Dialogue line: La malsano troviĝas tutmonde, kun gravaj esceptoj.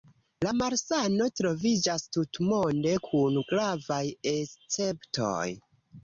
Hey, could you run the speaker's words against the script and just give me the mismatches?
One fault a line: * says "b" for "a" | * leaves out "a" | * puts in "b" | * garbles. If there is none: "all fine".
all fine